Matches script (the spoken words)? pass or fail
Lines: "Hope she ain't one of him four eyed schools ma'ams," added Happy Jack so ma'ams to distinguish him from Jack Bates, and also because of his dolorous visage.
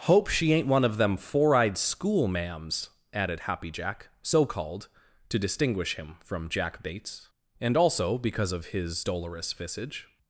fail